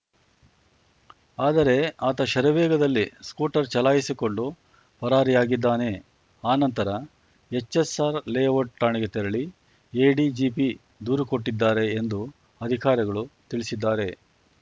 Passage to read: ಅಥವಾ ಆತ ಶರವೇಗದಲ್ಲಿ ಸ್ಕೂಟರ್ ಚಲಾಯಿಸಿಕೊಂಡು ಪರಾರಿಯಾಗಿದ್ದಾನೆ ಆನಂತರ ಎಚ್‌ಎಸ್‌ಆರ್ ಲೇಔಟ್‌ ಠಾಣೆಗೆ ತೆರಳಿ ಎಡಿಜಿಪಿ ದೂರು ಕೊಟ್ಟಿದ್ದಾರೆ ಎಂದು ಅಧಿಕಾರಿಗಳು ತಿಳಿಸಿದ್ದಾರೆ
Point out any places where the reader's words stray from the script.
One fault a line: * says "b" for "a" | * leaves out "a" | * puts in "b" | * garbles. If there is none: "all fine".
* says "ಆದರೆ" for "ಅಥವಾ"